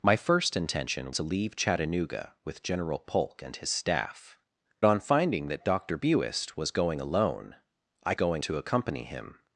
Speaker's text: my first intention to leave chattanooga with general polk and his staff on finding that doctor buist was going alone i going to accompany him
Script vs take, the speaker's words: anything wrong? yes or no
no